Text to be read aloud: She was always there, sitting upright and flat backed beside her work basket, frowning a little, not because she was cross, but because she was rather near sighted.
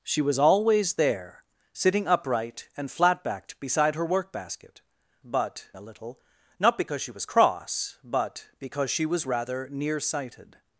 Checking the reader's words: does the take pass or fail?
fail